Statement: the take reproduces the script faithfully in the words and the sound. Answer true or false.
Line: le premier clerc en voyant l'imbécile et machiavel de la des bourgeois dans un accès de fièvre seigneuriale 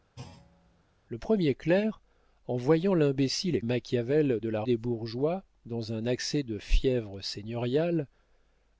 false